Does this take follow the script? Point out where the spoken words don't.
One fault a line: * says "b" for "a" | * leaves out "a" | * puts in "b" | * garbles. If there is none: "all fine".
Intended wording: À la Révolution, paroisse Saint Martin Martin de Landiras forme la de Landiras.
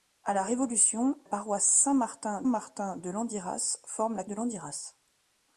all fine